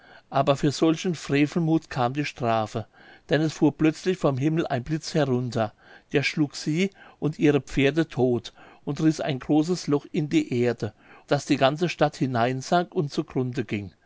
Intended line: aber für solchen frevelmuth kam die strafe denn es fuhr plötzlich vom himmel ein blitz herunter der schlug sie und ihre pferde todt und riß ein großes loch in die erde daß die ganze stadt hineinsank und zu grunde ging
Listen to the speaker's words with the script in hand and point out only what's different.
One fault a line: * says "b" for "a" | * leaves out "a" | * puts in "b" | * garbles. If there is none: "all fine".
all fine